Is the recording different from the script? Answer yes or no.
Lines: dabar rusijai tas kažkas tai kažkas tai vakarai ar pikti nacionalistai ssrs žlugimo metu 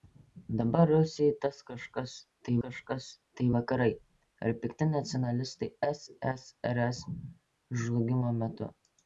no